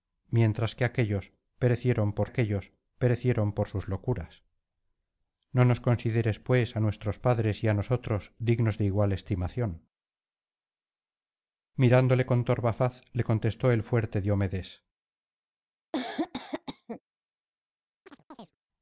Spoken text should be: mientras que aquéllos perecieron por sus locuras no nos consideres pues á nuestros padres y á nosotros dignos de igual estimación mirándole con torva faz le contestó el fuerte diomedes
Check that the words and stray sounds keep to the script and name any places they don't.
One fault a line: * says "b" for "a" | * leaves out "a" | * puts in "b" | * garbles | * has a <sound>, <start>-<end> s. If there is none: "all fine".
* puts in "aquéllos perecieron por"
* has a cough, 15.9-17.0 s
* has a chirp, 18.1-18.6 s